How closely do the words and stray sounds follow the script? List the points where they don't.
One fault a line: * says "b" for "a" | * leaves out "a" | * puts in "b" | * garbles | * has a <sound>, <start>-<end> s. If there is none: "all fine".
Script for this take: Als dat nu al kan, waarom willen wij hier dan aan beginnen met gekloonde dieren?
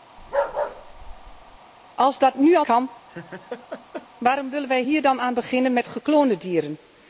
* has a bark, 0.2-1.6 s
* has a laugh, 3.1-4.1 s